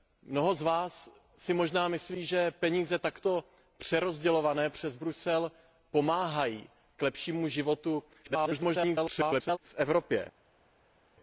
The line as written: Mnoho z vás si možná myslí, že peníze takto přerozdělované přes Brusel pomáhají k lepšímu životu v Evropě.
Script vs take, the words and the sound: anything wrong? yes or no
yes